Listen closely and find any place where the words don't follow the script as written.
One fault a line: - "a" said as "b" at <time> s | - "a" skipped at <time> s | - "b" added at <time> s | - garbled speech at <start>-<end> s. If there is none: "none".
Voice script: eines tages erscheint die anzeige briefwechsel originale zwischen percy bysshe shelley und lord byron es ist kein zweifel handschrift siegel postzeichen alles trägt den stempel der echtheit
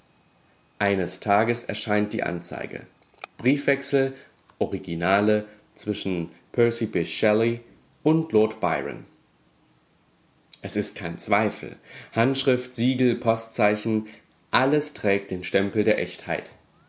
none